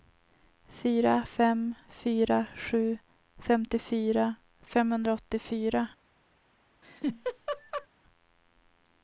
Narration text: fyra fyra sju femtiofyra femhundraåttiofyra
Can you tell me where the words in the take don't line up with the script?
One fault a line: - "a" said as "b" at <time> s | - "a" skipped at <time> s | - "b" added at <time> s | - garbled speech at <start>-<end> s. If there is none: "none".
- "fem" added at 1.2 s